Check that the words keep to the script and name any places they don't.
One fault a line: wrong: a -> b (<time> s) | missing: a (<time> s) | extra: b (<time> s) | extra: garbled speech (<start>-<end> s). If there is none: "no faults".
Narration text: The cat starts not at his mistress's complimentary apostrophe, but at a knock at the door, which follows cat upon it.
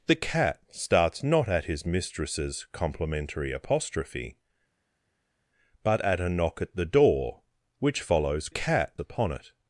no faults